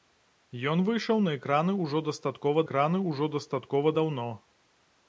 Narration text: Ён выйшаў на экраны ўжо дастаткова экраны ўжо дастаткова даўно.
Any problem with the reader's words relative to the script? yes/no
no